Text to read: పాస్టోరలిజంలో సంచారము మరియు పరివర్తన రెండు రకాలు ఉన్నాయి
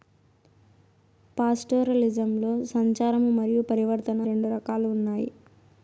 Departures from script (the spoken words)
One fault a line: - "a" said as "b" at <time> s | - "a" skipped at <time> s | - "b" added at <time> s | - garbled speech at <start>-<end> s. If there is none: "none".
none